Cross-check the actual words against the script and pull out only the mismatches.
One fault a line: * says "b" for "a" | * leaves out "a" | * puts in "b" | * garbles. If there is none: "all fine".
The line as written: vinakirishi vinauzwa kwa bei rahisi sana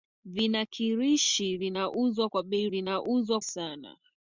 * says "vinauzwa" for "rahisi"